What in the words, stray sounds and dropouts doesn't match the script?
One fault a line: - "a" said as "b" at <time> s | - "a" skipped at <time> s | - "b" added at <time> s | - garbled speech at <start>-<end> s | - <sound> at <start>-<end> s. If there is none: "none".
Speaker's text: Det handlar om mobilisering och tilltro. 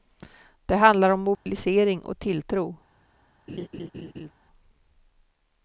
- dropout at 1.3-1.5 s
- laugh at 3.5-4.3 s